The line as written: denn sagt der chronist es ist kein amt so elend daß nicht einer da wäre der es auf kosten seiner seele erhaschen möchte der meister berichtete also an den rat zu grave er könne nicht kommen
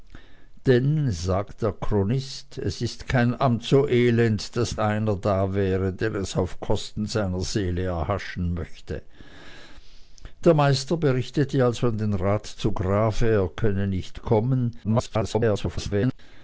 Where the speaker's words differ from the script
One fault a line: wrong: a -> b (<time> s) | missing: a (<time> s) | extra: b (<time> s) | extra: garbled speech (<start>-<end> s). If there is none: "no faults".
missing: nicht (4.8 s)
extra: garbled speech (14.8-16.2 s)